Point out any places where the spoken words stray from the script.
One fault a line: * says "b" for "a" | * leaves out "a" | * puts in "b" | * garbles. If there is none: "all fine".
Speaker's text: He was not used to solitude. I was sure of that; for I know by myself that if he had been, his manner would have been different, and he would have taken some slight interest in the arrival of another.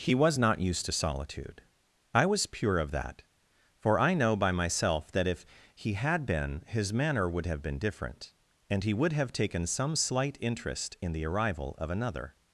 * says "pure" for "sure"